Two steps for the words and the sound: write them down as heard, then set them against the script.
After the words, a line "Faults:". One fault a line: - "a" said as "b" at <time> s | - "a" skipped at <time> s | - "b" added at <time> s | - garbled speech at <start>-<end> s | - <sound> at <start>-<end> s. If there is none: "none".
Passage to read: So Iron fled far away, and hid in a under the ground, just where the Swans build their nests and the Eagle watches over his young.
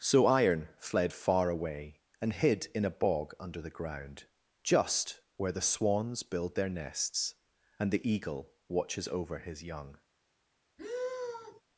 So Iron fled far away, and hid in a bog under the ground, just where the Swans build their nests and the Eagle watches over his young.
Faults:
- "bog" added at 2.9 s
- sigh at 10.8-11.6 s